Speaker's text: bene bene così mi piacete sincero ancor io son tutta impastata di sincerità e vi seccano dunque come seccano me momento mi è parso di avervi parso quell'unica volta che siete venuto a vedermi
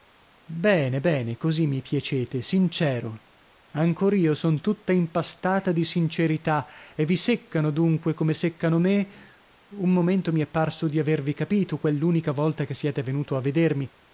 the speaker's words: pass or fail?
fail